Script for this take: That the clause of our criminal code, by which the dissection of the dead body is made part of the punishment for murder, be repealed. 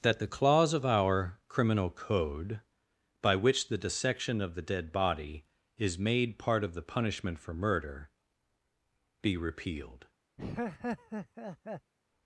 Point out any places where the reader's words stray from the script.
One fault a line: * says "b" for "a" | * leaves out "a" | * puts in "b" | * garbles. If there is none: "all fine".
all fine